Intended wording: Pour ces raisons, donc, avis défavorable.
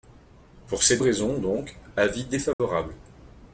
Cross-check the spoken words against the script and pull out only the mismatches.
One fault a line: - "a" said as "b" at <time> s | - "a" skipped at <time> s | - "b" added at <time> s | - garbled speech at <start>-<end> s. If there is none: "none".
none